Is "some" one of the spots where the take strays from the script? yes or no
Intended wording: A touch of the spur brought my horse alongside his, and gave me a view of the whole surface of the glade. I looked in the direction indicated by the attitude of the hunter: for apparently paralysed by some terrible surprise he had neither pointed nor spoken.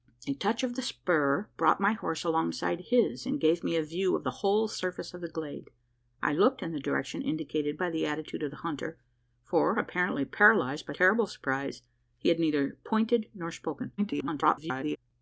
yes